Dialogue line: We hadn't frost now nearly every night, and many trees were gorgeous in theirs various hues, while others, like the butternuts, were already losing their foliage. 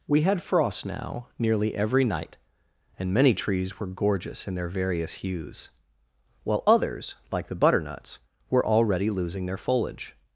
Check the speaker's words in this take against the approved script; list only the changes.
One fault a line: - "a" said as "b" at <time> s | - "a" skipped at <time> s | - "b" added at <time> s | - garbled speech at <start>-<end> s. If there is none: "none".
- "hadn't" said as "had" at 0.2 s
- "theirs" said as "their" at 4.5 s